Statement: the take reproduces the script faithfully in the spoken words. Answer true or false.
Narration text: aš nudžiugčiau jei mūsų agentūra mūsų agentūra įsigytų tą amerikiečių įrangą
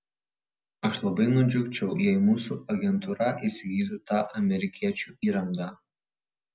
false